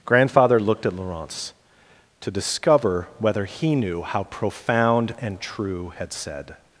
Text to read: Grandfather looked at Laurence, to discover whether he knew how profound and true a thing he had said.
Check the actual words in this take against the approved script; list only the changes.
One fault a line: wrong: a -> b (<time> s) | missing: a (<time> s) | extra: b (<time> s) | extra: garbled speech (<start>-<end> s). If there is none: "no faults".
missing: a thing he (5.9 s)